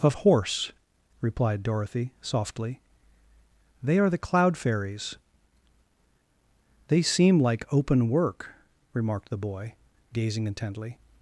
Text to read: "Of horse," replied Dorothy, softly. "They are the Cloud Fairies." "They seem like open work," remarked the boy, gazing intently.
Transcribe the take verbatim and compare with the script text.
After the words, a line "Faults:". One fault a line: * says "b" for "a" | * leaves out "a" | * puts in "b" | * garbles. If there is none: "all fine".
"Of horse," replied Dorothy, softly. "They are the Cloud Fairies." "They seem like open work," remarked the boy, gazing intently.
Faults:
all fine